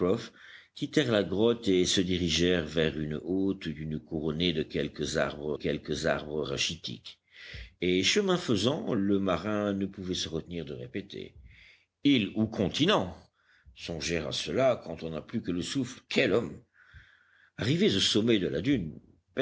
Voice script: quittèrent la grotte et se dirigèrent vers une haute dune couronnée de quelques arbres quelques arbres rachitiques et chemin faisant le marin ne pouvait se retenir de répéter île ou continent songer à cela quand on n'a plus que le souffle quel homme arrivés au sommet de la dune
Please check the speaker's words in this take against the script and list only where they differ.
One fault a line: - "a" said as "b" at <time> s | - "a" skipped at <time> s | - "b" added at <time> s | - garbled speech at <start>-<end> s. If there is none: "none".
none